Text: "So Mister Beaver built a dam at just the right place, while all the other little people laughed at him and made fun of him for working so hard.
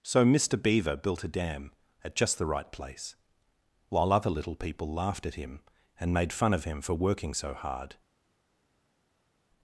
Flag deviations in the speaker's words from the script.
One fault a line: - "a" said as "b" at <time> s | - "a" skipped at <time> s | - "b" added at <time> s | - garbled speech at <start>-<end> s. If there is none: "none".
- "all the" skipped at 4.1 s